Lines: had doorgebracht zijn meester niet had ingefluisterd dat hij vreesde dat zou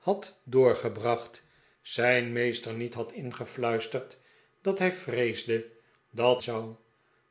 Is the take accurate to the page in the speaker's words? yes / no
yes